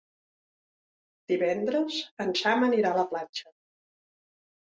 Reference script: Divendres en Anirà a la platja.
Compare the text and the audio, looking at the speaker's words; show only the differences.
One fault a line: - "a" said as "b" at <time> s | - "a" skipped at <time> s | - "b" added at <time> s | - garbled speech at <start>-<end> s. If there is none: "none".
- "Sam" added at 2.4 s